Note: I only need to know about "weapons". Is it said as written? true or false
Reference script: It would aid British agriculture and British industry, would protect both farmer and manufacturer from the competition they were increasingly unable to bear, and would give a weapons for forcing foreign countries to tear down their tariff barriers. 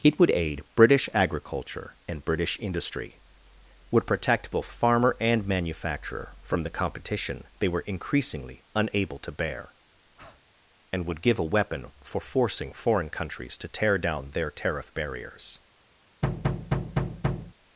false